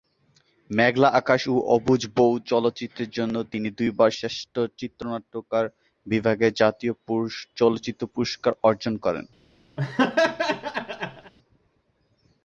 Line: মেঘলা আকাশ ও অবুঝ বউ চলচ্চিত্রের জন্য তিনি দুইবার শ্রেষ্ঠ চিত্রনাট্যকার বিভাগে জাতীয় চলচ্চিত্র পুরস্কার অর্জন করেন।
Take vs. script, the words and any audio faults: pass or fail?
fail